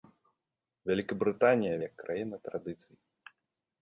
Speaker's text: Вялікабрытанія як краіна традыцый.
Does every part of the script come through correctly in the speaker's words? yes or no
yes